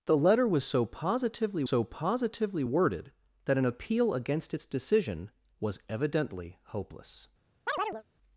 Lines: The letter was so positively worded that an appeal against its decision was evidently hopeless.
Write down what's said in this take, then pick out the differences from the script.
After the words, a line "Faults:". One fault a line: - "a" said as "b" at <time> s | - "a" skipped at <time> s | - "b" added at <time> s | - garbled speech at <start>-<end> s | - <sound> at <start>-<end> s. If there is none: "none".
The letter was so positively so positively worded that an appeal against its decision was evidently hopeless.
Faults:
- "so positively" added at 1.6 s
- chirp at 7.7-8.0 s